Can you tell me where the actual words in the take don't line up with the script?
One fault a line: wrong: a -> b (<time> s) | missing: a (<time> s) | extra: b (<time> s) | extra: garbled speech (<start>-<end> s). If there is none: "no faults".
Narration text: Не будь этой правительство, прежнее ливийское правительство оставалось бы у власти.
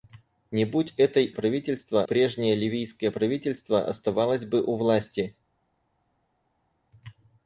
no faults